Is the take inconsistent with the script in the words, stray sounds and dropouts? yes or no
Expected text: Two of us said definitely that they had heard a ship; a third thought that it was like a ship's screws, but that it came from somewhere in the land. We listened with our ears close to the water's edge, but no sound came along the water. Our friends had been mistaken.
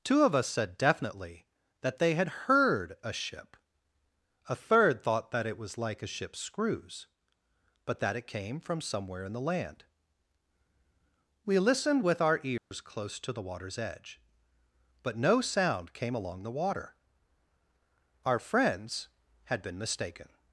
yes